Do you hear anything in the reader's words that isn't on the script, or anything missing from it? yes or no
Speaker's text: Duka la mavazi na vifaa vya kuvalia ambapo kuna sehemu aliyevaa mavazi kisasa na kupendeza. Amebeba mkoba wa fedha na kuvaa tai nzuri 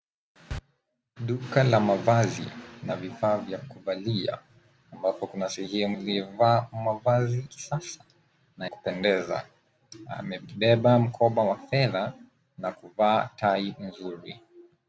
no